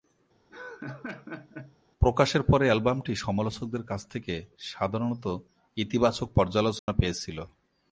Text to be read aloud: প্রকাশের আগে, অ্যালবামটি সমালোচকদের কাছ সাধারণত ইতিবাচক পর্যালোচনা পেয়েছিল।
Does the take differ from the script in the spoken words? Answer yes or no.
yes